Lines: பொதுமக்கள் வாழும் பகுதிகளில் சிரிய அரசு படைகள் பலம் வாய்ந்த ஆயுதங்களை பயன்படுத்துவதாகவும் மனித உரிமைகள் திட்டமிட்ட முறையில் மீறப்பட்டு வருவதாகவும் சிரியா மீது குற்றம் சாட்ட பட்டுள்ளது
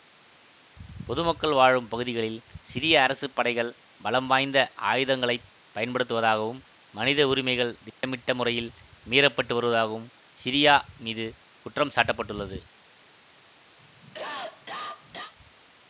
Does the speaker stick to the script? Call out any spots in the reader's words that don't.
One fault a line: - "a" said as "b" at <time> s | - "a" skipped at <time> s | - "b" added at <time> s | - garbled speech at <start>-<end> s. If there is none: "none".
none